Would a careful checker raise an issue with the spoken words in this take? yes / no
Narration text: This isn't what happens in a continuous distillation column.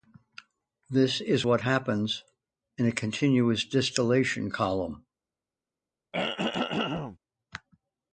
yes